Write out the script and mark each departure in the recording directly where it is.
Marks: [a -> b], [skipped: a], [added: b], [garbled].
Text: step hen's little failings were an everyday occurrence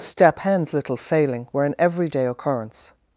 step hen's little [failings -> failing] were an everyday occurrence